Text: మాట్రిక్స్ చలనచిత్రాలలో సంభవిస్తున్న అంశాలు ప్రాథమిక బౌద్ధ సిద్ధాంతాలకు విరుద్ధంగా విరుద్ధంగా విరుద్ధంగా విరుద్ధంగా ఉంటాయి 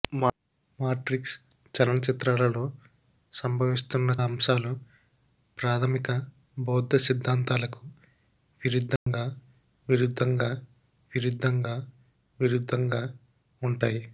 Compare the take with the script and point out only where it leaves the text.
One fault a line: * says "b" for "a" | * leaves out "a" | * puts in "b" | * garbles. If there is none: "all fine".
all fine